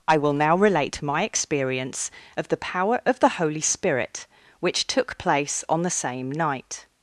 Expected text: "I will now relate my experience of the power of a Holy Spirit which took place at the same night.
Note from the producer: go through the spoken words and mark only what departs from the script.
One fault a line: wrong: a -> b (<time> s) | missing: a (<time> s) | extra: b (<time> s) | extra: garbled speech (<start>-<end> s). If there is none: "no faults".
wrong: a -> the (3.2 s)
wrong: at -> on (5.7 s)